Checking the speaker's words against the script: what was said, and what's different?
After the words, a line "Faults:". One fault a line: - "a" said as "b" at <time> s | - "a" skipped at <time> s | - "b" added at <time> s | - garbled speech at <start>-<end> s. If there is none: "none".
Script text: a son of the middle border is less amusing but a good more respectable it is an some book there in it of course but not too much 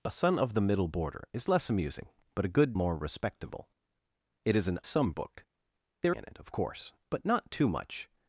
a son of the middle border is less amusing but a good more respectable it is an some book there in it of course but not too much
Faults:
none